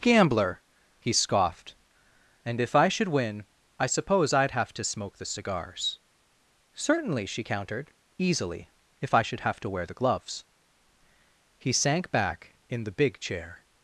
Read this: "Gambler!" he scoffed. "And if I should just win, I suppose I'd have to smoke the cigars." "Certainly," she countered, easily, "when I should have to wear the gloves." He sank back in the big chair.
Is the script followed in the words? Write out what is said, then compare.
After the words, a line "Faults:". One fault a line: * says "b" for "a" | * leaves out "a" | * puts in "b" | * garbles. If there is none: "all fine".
"Gambler!" he scoffed. "And if I should win, I suppose I'd have to smoke the cigars." "Certainly," she countered, easily, "if I should have to wear the gloves." He sank back in the big chair.
Faults:
* leaves out "just"
* says "if" for "when"